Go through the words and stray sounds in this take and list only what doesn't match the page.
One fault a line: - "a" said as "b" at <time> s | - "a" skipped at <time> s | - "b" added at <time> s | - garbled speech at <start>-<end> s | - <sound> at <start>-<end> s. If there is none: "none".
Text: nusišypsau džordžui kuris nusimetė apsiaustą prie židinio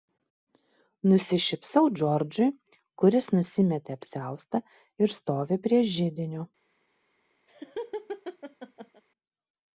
- "ir stovi" added at 5.0 s
- laugh at 7.5-9.0 s